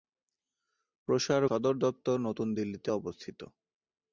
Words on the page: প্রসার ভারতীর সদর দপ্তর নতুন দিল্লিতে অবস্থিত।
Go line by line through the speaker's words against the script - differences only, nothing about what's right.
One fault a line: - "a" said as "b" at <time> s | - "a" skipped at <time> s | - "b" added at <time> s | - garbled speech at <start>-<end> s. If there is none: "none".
- "ভারতীর" skipped at 1.4 s